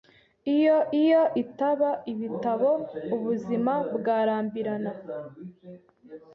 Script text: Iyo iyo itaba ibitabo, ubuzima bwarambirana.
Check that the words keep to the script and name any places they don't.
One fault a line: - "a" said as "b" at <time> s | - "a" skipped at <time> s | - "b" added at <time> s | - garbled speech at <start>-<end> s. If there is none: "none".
none